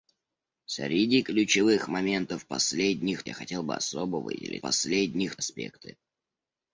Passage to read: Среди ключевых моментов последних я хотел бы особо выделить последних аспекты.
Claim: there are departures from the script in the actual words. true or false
false